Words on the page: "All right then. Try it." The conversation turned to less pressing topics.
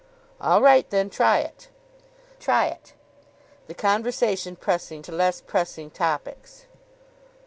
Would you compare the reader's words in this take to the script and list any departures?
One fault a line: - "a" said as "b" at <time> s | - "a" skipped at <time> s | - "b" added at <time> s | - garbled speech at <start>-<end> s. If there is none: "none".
- "try it" added at 2.4 s
- "turned" said as "pressing" at 4.5 s